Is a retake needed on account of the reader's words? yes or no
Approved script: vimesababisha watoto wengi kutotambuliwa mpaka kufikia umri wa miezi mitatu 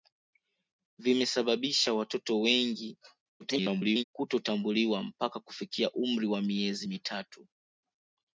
yes